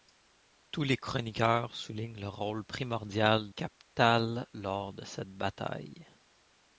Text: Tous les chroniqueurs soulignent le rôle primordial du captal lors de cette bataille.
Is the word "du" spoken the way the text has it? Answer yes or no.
no